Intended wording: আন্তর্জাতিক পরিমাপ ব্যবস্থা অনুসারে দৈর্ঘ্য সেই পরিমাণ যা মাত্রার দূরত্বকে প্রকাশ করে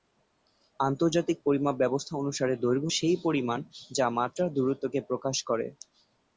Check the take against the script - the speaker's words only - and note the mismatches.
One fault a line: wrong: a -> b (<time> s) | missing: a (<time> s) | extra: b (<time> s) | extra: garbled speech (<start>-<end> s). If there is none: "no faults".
no faults